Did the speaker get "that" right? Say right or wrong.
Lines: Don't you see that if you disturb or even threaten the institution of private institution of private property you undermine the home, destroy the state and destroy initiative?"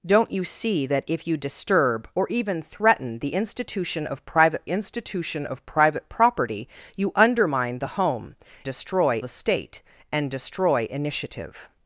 right